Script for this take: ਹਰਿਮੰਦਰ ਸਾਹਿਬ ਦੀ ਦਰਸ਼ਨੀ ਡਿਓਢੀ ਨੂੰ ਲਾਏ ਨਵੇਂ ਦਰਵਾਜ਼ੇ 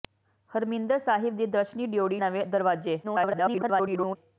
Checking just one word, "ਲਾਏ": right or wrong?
wrong